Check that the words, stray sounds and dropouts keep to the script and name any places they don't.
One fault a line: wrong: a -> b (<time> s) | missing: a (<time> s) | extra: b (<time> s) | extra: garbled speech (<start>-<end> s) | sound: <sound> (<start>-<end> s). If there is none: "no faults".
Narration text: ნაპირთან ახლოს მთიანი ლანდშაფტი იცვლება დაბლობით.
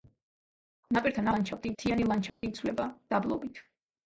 wrong: ახლოს -> ლანდშაფტი (1.3 s)
sound: dropout (2.3-2.4 s)